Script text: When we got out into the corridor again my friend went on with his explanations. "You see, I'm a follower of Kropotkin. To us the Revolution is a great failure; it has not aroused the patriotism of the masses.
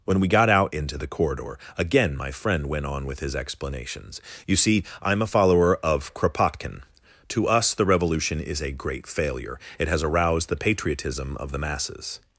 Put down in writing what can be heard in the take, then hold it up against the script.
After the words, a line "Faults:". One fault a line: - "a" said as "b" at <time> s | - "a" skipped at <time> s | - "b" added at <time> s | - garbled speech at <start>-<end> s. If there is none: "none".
When we got out into the corridor again my friend went on with his explanations. "You see, I'm a follower of Kropotkin. To us the Revolution is a great failure; it has aroused the patriotism of the masses.
Faults:
- "not" skipped at 10.0 s